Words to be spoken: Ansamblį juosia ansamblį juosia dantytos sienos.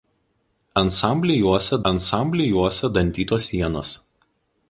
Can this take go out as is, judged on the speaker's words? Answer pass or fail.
pass